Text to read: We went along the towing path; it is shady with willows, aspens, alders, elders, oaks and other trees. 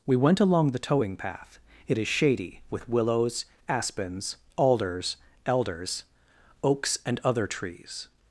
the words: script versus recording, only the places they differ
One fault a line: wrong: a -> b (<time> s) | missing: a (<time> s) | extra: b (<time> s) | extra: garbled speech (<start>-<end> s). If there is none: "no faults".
no faults